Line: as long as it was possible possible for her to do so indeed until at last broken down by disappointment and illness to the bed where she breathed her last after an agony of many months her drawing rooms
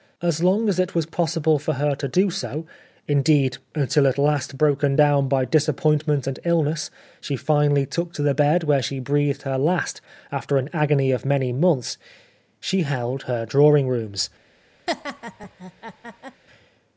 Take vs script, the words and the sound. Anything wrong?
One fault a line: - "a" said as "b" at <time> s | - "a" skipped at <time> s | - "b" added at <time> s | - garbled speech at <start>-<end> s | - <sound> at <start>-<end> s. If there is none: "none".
- "possible" skipped at 1.6 s
- "she finally took" added at 7.2 s
- "she held" added at 12.6 s
- laugh at 14.9-16.4 s